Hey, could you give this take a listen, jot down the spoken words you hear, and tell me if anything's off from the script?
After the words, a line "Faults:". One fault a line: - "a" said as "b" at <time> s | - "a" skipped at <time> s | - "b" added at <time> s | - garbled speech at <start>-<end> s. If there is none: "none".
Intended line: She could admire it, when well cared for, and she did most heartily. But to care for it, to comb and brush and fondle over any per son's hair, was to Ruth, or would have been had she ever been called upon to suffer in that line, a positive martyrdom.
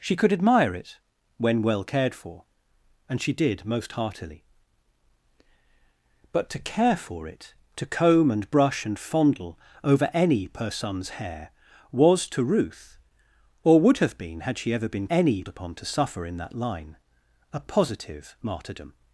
She could admire it, when well cared for, and she did most heartily. But to care for it, to comb and brush and fondle over any per son's hair, was to Ruth, or would have been had she ever been any upon to suffer in that line, a positive martyrdom.
Faults:
- "called" said as "any" at 15.1 s